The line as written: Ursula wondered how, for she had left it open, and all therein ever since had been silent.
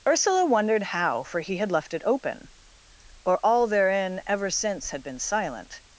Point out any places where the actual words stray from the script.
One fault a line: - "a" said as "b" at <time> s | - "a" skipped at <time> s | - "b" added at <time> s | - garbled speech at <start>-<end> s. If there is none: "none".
- "she" said as "he" at 1.4 s
- "and" said as "or" at 3.2 s